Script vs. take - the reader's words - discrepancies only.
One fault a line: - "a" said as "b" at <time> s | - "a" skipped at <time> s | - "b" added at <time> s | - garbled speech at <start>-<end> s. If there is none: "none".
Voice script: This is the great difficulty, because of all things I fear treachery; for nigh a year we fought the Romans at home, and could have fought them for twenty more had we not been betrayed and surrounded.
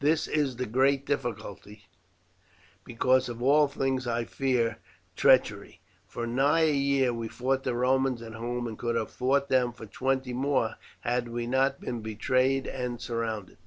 none